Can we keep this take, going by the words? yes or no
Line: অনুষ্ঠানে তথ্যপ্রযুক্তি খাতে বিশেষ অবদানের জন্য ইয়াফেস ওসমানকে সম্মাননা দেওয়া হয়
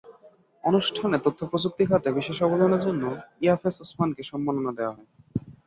yes